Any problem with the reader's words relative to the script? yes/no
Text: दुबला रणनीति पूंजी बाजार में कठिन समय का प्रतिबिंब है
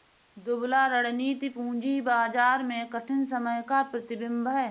no